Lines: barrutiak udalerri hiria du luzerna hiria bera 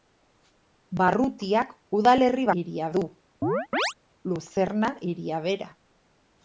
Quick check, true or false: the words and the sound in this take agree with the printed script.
false